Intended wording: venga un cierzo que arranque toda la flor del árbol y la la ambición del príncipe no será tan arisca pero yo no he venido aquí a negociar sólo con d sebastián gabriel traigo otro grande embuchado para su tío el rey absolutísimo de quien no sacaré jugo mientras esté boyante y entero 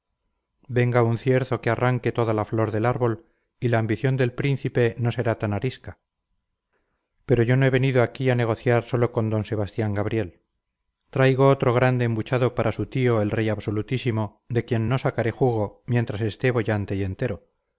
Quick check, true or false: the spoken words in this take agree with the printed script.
false